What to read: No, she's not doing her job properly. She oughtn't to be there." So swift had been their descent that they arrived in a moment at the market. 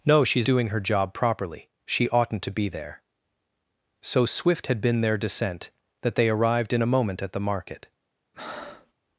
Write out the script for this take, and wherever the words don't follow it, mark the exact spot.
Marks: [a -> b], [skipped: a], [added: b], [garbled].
No, she's [skipped: not] doing her job properly. She oughtn't to be there." So swift had been their descent that they arrived in a moment at the market.